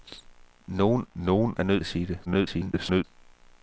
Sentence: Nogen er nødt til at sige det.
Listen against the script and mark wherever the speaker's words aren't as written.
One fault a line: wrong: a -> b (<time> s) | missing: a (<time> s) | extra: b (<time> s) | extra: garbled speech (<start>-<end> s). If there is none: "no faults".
extra: nogen (1.1 s)
missing: til (1.8 s)
extra: garbled speech (2.3-3.0 s)